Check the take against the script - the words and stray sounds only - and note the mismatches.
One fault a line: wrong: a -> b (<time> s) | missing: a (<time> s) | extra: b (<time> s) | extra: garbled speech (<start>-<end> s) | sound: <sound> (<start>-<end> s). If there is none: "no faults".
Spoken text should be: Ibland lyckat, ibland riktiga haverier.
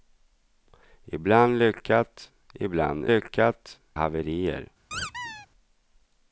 wrong: riktiga -> lyckat (3.1 s)
sound: squeak (4.9-5.5 s)